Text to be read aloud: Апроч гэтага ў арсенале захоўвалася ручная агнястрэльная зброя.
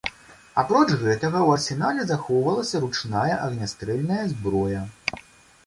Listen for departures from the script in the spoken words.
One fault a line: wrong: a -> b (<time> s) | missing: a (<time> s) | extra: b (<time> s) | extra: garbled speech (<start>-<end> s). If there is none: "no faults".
no faults